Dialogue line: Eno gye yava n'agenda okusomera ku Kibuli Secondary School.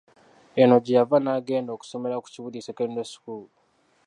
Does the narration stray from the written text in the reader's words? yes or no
no